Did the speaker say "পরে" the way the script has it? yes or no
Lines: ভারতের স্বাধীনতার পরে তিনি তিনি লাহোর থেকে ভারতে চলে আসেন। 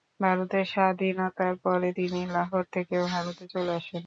yes